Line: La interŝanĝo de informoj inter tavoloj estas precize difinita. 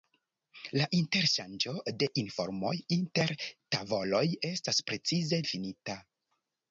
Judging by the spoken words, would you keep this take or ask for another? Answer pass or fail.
pass